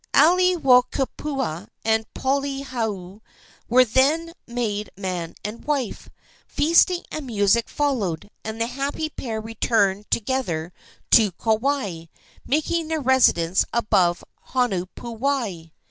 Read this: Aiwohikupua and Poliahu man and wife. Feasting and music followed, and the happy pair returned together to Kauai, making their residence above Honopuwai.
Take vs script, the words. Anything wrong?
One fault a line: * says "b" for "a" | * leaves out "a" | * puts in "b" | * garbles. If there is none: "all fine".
* puts in "were then made"